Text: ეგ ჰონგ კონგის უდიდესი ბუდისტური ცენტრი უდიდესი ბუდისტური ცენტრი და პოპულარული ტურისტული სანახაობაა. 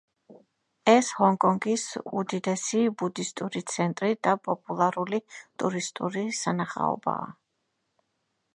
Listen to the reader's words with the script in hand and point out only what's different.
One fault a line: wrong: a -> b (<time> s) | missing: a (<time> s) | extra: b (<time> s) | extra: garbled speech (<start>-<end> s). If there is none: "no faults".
wrong: ეგ -> ეს (0.9 s)
missing: უდიდესი ბუდისტური ცენტრი (4.1 s)